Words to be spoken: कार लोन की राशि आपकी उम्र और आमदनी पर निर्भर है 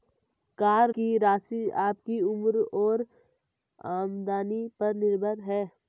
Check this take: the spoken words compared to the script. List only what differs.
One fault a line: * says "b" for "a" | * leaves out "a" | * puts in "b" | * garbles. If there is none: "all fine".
* leaves out "लोन"